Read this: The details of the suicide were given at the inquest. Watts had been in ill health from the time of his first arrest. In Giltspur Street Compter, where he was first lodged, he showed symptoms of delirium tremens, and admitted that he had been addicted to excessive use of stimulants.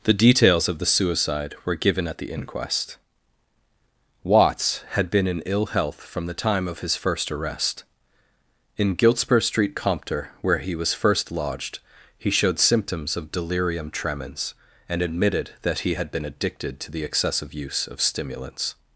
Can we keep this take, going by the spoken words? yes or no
no